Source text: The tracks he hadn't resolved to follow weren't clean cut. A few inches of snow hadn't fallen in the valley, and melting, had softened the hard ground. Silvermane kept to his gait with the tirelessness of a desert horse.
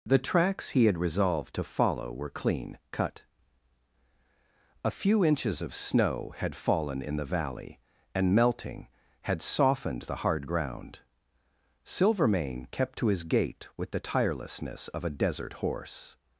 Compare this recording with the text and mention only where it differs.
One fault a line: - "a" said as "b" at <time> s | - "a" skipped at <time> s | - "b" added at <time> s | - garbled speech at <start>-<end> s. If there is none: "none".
- "hadn't" said as "had" at 0.8 s
- "weren't" said as "were" at 2.1 s
- "hadn't" said as "had" at 6.4 s